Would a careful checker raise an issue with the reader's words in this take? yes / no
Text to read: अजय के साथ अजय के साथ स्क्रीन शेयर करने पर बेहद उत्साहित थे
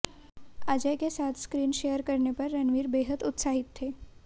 yes